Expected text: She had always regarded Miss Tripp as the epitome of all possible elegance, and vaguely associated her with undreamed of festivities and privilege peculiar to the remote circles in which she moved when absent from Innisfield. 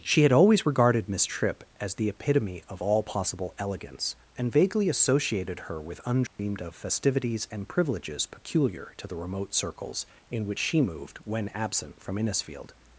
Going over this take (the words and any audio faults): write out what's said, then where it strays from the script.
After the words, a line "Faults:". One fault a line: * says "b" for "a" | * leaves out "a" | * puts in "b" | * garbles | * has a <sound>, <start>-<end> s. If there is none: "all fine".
She had always regarded Miss Tripp as the epitome of all possible elegance, and vaguely associated her with undreamed of festivities and privileges peculiar to the remote circles in which she moved when absent from Innisfield.
Faults:
* has a dropout, 6.3-6.4 s
* says "privileges" for "privilege"